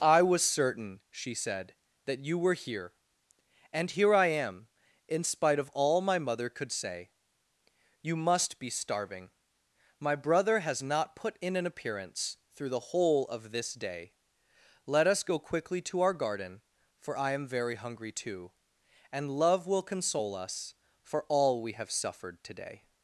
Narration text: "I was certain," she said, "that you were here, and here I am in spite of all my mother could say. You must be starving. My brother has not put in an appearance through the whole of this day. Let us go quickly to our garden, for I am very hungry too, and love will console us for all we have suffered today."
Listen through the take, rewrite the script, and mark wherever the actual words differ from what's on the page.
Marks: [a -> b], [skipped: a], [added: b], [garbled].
"I was certain," she said, "that you were here, and here I am in spite of all my mother could say. You must be starving. My brother has not put in an appearance through the whole of this day. Let us go quickly to our garden, for I am very hungry too, and love will console us for all we have suffered today."